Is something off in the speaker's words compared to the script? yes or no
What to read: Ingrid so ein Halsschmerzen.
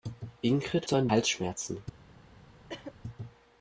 no